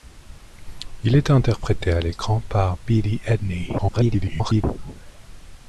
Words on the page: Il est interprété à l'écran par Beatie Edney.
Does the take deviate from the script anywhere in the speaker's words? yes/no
yes